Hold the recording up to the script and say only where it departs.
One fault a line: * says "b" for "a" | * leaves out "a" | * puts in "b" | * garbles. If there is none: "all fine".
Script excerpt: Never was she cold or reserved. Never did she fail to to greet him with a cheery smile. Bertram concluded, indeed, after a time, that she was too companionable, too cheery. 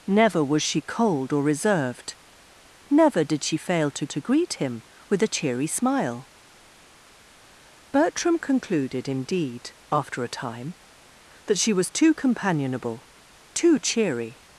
all fine